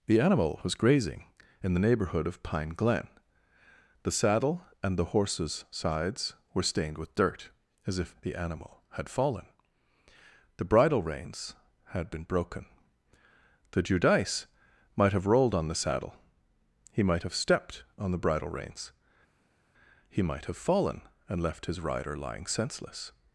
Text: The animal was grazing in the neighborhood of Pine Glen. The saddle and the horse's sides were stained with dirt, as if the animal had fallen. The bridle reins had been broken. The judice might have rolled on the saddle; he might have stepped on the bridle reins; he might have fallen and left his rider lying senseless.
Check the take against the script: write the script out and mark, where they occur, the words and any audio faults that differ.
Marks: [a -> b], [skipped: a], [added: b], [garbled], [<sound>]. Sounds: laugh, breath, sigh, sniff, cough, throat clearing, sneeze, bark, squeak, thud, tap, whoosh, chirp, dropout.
The animal was grazing in the neighborhood of Pine Glen. The saddle and the horse's sides were stained with dirt, as if the animal had fallen. The bridle reins had been broken. The judice might have rolled on the saddle; he might have stepped on the bridle reins; he might have fallen and left his rider lying senseless.